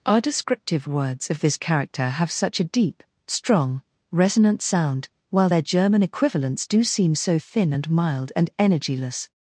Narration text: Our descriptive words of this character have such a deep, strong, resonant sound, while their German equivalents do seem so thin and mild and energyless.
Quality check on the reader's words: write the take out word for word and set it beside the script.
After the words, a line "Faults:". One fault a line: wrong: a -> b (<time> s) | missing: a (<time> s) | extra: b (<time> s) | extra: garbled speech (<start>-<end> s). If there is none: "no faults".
Our descriptive words of this character have such a deep, strong, resonant sound, while their German equivalents do seem so thin and mild and energyless.
Faults:
no faults